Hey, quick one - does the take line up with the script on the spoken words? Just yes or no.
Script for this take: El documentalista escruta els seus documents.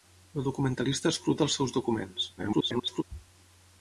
no